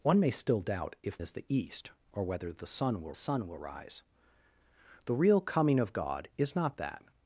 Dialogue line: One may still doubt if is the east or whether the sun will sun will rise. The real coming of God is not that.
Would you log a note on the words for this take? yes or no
no